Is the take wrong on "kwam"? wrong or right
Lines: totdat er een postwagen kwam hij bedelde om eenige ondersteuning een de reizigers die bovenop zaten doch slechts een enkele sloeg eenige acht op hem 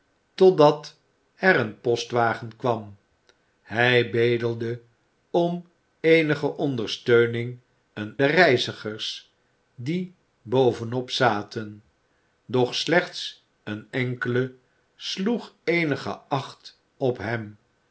right